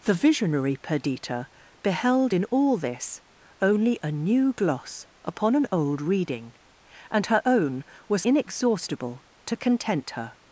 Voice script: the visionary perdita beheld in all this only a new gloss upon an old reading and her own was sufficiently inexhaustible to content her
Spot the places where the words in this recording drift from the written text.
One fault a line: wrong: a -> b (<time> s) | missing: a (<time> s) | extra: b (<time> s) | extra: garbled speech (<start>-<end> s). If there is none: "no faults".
missing: sufficiently (8.2 s)